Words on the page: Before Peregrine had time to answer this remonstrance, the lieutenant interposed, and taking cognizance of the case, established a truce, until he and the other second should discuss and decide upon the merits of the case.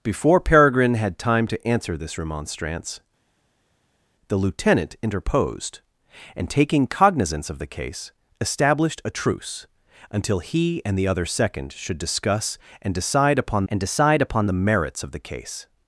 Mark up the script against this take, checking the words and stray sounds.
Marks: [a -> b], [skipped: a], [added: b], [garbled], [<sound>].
Before Peregrine had time to answer this remonstrance, the lieutenant interposed, and taking cognizance of the case, established a truce, until he and the other second should discuss and decide upon [added: and decide upon] the merits of the case.